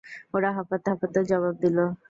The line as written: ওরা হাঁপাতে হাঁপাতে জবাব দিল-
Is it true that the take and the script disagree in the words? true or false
false